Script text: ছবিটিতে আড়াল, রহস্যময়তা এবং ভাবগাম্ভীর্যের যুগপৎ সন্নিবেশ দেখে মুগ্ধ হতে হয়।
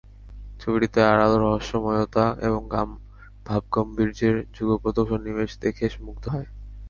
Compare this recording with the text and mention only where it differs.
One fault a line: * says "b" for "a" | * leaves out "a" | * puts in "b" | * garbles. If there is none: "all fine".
* leaves out "হতে"